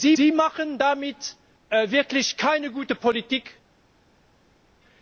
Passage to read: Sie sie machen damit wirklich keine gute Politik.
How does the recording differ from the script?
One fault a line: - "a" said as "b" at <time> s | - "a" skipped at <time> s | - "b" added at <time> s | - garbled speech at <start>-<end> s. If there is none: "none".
none